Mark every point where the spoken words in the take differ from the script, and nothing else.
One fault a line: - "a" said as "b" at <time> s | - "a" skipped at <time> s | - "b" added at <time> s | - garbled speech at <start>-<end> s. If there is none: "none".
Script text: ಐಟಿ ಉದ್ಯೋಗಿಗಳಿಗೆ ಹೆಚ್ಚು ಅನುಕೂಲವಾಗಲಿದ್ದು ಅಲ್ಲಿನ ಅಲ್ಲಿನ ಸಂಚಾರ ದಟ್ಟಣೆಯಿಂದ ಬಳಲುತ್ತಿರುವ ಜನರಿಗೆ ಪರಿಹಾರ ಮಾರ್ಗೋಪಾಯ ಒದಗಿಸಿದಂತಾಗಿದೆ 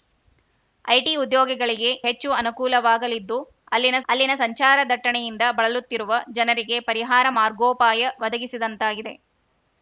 none